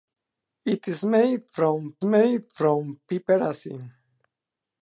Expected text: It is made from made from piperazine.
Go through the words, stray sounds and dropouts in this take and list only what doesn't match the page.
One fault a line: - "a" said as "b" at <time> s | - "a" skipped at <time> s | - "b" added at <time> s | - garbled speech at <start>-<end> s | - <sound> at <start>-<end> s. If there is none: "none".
none